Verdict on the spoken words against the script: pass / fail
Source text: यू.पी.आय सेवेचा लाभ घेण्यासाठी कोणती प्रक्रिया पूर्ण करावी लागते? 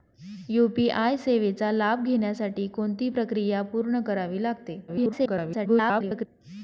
fail